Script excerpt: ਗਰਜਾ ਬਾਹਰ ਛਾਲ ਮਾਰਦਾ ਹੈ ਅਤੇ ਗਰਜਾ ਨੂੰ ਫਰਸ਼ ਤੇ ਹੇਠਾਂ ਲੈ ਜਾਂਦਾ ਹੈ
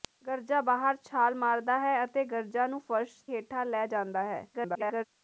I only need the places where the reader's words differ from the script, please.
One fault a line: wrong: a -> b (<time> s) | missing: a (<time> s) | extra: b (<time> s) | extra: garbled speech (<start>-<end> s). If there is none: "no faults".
missing: ਤੇ (3.2 s)
extra: garbled speech (4.5-5.1 s)